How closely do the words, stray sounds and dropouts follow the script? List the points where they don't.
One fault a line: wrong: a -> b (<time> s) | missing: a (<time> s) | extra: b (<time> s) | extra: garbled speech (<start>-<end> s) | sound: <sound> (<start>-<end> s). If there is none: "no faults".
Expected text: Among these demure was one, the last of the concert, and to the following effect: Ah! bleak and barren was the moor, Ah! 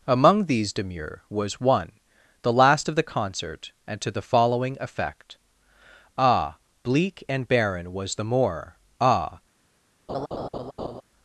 sound: laugh (10.1-11.0 s)